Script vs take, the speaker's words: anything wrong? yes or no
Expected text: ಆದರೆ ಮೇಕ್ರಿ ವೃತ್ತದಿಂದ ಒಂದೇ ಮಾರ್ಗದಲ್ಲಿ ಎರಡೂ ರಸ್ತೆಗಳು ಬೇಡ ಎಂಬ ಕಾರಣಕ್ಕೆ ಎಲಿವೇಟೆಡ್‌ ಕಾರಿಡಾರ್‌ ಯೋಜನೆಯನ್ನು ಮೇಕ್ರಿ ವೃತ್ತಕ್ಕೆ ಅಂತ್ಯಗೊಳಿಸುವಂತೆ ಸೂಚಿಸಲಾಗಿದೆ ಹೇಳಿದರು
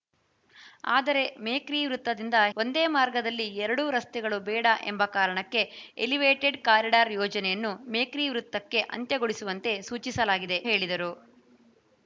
no